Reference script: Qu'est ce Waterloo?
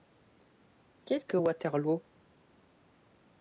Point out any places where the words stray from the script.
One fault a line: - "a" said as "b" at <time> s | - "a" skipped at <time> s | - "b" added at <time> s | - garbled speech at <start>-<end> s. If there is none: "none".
- "que" added at 1.2 s